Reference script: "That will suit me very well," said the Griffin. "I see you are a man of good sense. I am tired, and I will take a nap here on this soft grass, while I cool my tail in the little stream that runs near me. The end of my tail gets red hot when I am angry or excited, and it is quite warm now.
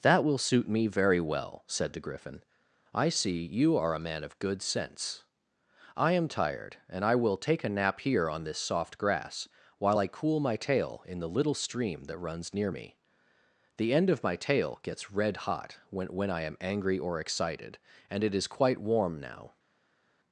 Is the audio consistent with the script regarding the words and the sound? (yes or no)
no